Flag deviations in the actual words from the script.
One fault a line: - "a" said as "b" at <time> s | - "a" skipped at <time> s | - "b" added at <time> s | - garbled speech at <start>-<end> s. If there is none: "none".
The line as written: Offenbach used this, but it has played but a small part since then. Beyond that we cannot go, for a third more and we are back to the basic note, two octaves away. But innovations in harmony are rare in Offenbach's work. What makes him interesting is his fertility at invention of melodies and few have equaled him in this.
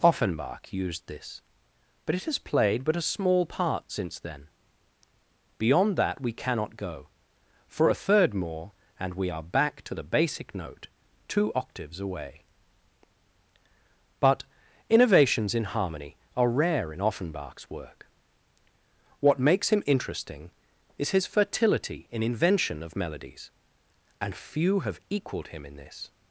- "at" said as "in" at 22.1 s